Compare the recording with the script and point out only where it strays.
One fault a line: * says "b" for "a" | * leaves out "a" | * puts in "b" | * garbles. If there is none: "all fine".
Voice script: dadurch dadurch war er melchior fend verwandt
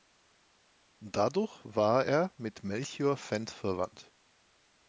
* leaves out "dadurch"
* puts in "mit"